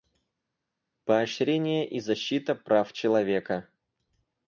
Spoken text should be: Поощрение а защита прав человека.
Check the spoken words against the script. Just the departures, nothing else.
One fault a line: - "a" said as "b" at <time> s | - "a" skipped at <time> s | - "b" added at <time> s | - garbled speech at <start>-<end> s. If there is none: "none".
- "а" said as "и" at 1.8 s